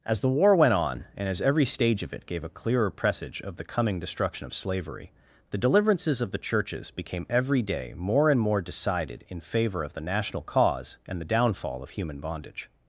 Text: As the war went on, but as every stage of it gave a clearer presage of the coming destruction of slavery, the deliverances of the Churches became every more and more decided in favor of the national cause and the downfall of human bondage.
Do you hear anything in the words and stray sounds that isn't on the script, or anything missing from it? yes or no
yes